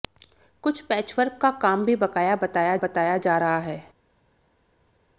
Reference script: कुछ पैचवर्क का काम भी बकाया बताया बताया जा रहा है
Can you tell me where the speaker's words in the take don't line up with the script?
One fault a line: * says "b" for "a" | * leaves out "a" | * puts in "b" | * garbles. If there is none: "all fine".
all fine